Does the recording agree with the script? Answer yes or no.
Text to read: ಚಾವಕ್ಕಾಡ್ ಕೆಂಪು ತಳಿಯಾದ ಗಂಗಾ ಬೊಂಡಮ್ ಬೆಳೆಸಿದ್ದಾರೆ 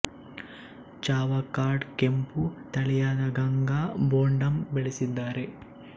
yes